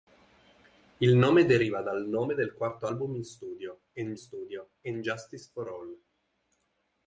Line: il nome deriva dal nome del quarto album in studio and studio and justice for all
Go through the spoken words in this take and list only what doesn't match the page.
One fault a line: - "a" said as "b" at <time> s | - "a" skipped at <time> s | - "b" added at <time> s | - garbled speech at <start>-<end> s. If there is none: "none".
none